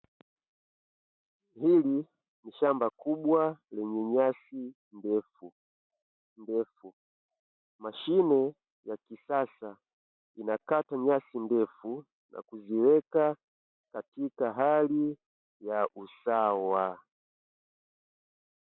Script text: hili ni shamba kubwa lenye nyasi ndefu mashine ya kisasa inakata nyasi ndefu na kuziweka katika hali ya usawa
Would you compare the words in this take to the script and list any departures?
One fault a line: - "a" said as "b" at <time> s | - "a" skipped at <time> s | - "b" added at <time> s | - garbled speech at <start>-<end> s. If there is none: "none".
- "ndefu" added at 6.4 s